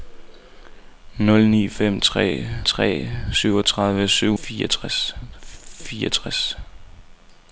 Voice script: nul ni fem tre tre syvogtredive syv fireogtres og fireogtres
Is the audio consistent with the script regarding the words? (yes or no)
yes